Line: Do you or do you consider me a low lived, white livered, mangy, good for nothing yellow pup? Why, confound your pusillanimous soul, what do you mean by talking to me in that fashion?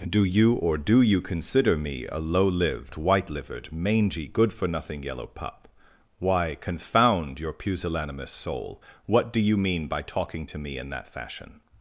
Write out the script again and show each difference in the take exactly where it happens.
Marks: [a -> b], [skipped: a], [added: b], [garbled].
Do you or do you consider me a low lived, white livered, mangy, good for nothing yellow pup? Why, confound your pusillanimous soul, what do you mean by talking to me in that fashion?